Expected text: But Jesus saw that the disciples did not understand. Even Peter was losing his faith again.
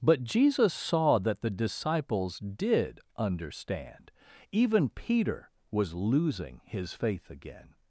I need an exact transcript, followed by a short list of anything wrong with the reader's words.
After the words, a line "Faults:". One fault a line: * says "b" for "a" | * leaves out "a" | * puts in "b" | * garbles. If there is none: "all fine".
But Jesus saw that the disciples did understand. Even Peter was losing his faith again.
Faults:
* leaves out "not"